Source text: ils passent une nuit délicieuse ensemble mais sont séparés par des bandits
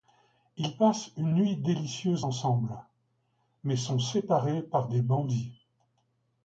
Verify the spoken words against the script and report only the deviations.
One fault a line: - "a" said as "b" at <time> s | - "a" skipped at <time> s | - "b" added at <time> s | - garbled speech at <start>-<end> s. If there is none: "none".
none